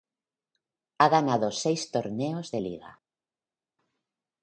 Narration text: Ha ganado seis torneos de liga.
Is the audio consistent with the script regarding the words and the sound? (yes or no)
yes